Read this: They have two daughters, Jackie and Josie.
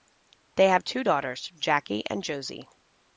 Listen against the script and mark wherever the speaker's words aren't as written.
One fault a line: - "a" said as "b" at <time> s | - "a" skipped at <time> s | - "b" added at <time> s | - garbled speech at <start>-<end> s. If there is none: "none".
none